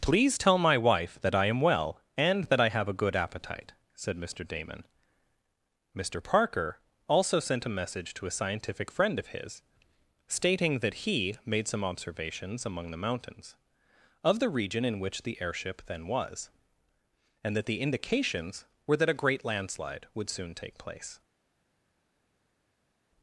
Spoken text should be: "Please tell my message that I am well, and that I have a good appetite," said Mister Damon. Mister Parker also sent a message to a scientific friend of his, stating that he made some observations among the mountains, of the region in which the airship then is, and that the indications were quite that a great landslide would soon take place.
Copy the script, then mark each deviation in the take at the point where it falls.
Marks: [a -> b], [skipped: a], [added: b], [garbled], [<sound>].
"Please tell my [message -> wife] that I am well, and that I have a good appetite," said Mister Damon. Mister Parker also sent a message to a scientific friend of his, stating that he made some observations among the mountains, of the region in which the airship then [is, -> was] and that the indications were [skipped: quite] that a great landslide would soon take place.